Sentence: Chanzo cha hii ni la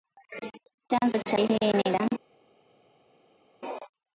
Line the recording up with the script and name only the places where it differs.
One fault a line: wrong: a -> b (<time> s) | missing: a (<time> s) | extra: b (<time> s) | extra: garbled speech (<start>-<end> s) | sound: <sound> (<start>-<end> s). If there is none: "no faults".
no faults